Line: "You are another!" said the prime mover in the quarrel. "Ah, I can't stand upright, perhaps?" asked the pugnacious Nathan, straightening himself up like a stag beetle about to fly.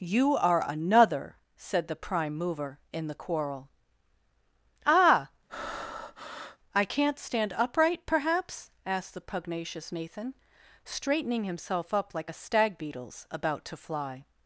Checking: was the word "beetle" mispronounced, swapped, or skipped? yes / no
yes